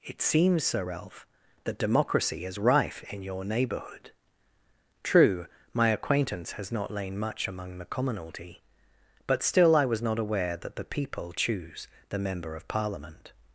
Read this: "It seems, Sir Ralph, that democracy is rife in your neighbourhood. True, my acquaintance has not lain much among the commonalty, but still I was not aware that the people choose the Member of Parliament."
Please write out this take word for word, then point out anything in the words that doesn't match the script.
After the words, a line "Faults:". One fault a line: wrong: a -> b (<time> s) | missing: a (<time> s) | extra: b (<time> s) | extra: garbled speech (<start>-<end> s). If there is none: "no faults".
"It seems, Sir Ralph, that democracy is rife in your neighbourhood. True, my acquaintance has not lain much among the commonalty, but still I was not aware that the people choose the Member of Parliament."
Faults:
no faults